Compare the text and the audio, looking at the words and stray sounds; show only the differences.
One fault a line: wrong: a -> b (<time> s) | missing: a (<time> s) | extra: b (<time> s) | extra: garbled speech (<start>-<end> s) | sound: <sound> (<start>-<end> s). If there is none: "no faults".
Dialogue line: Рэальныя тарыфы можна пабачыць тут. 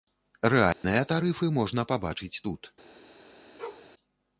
sound: dropout (0.7-0.8 s)
sound: bark (3.6-3.9 s)